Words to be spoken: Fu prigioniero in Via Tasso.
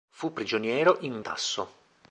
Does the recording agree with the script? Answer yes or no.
no